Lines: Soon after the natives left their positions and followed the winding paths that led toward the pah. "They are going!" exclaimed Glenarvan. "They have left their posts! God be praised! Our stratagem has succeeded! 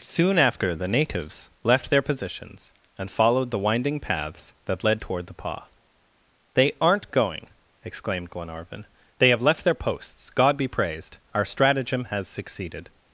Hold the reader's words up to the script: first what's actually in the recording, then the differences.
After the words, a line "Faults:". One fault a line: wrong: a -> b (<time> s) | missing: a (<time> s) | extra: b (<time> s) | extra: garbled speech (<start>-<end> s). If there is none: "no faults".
Soon after the natives left their positions and followed the winding paths that led toward the pah. "They aren't going!" exclaimed Glenarvan. "They have left their posts! God be praised! Our stratagem has succeeded!
Faults:
wrong: are -> aren't (6.8 s)